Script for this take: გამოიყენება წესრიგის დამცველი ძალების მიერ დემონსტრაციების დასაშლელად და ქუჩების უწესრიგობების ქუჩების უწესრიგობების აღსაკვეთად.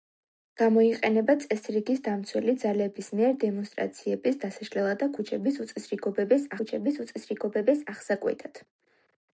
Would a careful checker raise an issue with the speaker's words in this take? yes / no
no